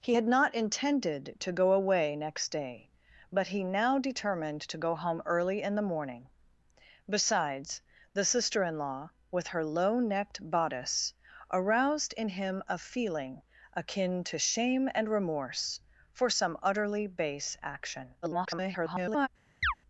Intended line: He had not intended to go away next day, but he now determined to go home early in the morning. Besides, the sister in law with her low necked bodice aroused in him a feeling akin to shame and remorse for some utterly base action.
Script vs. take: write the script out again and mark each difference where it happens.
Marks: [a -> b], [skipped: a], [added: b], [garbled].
He had not intended to go away next day, but he now determined to go home early in the morning. Besides, the sister in law with her low necked bodice aroused in him a feeling akin to shame and remorse for some utterly base action. [garbled]